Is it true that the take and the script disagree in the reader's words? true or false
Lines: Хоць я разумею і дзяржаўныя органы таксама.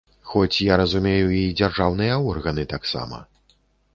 false